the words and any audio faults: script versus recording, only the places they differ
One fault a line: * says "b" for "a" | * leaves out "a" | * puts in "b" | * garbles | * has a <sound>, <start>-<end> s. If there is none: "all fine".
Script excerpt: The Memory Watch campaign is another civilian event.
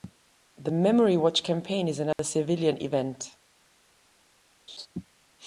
* has a dropout, 2.1-2.2 s
* has a laugh, 4.7-4.9 s